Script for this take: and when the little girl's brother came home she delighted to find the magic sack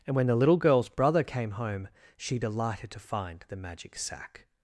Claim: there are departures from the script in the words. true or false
false